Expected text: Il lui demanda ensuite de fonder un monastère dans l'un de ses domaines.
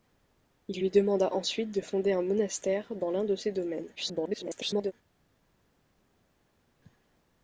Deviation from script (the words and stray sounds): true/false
true